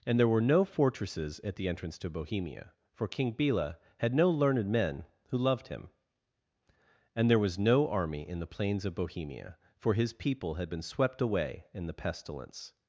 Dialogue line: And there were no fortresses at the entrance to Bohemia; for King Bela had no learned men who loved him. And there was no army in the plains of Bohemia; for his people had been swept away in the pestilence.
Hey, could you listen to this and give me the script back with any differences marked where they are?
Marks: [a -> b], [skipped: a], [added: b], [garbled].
And there were no fortresses at the entrance to Bohemia; for King Bela had no learned men who loved him. And there was no army in the plains of Bohemia; for his people had been swept away in the pestilence.